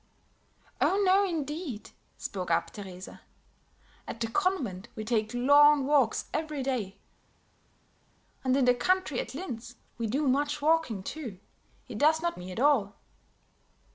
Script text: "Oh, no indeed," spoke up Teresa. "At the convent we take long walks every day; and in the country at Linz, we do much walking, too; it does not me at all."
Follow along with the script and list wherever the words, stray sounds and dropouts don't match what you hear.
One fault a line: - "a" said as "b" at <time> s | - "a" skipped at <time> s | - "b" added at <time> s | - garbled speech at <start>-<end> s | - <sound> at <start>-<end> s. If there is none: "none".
none